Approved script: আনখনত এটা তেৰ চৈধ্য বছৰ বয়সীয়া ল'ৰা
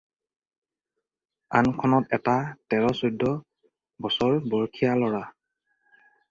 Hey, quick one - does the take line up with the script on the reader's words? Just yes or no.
yes